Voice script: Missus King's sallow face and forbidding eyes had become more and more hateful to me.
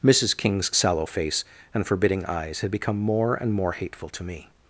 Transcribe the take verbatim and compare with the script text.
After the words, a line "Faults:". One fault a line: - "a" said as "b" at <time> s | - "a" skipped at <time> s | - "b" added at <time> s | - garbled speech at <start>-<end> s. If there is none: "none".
Missus King's sallow face and forbidding eyes had become more and more hateful to me.
Faults:
none